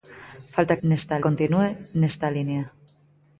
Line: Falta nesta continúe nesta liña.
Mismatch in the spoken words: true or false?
false